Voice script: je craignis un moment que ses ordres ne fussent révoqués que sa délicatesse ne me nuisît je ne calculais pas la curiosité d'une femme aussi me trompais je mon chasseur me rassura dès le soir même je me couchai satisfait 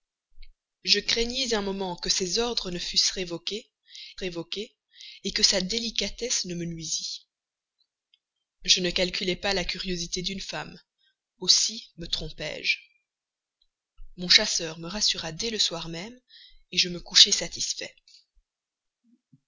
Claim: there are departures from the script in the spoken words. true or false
true